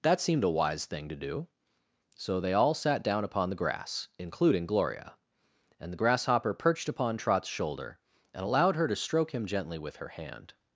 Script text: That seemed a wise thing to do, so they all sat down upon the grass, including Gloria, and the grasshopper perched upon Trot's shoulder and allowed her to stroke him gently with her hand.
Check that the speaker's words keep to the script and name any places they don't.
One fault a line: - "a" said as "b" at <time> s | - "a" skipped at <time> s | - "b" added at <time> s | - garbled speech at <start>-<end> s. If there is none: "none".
none